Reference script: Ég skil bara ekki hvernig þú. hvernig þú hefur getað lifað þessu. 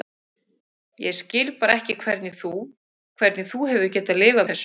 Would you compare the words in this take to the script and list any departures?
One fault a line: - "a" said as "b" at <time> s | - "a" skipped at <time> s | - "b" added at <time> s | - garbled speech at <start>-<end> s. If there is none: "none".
none